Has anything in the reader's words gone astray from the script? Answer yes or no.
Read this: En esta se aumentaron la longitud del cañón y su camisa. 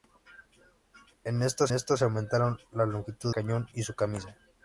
yes